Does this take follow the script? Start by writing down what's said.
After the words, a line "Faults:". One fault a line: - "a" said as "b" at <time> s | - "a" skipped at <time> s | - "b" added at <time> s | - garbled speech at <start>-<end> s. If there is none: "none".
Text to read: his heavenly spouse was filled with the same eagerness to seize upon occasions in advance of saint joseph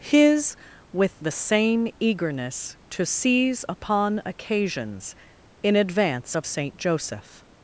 his with the same eagerness to seize upon occasions in advance of saint joseph
Faults:
- "heavenly spouse was filled" skipped at 0.6 s